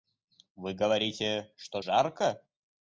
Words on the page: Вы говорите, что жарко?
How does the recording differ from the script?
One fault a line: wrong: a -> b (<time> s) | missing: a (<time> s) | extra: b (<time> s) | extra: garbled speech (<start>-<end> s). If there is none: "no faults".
no faults